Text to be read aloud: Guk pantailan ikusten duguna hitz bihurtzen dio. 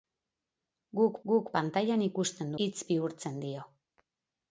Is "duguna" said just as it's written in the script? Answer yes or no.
no